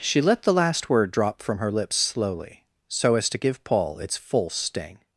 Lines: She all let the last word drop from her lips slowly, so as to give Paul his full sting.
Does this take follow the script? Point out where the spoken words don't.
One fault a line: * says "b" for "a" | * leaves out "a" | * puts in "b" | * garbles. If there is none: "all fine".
* leaves out "all"
* says "its" for "his"